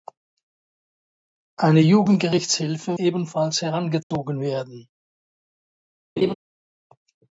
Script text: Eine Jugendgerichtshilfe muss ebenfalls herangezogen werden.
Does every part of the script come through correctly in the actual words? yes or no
no